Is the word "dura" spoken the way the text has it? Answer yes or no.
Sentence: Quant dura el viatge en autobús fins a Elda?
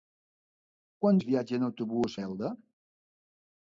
no